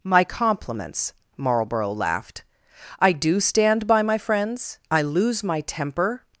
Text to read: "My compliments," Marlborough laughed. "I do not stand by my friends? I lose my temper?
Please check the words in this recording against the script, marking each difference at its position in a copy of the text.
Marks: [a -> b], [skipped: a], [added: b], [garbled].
"My compliments," Marlborough laughed. "I do [skipped: not] stand by my friends? I lose my temper?